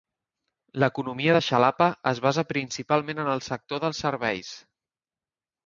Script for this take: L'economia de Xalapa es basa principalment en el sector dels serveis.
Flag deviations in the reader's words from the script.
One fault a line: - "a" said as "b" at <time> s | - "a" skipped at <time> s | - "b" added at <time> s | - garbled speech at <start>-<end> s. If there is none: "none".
none